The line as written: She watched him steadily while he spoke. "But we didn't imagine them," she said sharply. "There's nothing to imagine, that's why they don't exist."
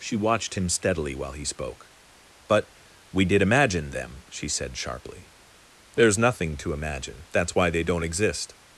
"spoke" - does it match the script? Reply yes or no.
yes